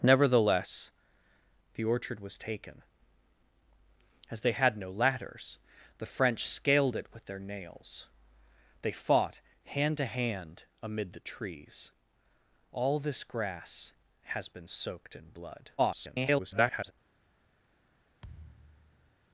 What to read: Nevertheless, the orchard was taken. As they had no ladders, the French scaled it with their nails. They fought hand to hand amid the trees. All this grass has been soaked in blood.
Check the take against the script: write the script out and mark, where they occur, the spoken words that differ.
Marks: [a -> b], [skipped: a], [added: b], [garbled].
Nevertheless, the orchard was taken. As they had no ladders, the French scaled it with their nails. They fought hand to hand amid the trees. All this grass has been soaked in blood. [garbled]